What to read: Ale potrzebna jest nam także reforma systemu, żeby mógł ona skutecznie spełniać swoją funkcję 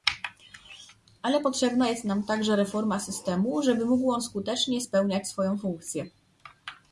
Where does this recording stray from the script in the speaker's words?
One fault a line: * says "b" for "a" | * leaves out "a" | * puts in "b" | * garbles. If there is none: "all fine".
* says "on" for "ona"